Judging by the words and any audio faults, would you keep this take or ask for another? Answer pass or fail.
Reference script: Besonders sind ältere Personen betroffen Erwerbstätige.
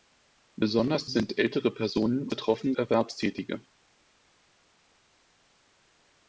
pass